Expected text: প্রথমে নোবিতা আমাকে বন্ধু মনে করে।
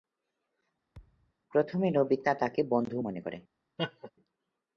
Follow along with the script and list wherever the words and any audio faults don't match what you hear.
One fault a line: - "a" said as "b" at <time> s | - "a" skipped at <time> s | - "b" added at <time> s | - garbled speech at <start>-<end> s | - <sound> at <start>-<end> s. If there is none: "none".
- thud at 0.9-1.3 s
- "আমাকে" said as "তাকে" at 2.3 s
- laugh at 3.8-4.1 s